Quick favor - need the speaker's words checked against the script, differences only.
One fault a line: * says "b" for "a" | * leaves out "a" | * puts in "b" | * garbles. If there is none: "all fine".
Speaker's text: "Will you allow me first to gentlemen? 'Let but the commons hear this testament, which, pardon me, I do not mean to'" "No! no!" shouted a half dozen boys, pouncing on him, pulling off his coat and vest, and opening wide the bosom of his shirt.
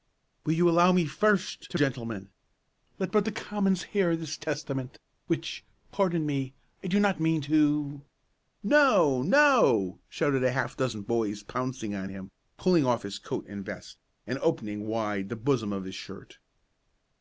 all fine